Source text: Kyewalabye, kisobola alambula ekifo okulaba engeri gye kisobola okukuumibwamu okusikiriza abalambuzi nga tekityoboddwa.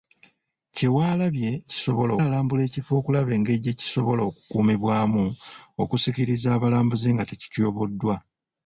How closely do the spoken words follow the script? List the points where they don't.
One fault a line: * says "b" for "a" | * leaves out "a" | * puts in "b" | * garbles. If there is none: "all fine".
all fine